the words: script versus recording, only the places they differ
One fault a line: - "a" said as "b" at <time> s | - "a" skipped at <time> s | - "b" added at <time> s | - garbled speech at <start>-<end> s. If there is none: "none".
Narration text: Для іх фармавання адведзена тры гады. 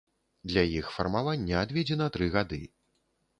none